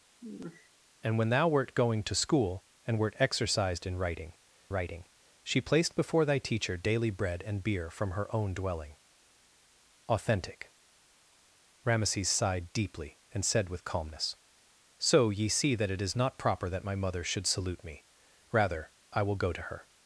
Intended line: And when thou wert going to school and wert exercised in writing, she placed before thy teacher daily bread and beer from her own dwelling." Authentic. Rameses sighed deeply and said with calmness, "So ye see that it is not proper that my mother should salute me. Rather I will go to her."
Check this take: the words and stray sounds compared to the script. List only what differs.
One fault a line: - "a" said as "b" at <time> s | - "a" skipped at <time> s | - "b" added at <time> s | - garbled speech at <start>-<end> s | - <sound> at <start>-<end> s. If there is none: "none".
- sigh at 0.2-0.7 s
- "writing" added at 4.7 s